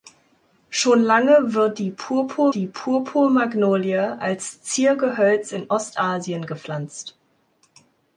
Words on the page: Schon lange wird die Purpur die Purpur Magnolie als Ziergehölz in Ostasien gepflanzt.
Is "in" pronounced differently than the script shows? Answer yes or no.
no